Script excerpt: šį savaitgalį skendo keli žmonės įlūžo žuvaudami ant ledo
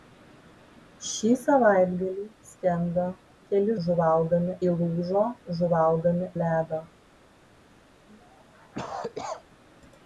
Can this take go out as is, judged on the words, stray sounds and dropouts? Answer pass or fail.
fail